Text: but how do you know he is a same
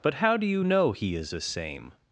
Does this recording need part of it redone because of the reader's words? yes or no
no